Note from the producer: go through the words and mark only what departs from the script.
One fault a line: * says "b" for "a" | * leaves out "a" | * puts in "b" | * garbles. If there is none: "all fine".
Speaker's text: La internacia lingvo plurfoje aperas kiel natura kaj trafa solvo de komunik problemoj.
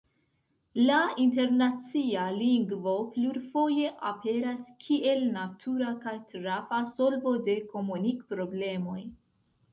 all fine